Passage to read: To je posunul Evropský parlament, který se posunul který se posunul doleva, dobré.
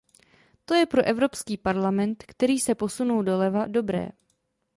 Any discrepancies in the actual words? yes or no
yes